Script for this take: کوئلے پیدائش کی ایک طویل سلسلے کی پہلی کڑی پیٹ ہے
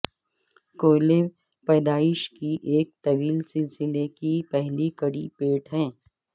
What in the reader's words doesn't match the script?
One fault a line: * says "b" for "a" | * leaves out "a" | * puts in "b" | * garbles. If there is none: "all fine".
all fine